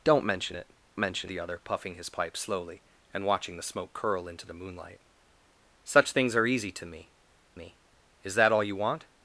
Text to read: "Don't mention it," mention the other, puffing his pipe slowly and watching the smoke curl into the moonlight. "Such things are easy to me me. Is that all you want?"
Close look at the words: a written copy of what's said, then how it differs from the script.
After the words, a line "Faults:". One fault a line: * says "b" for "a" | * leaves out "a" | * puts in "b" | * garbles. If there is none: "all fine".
"Don't mention it," mention the other, puffing his pipe slowly and watching the smoke curl into the moonlight. "Such things are easy to me me. Is that all you want?"
Faults:
all fine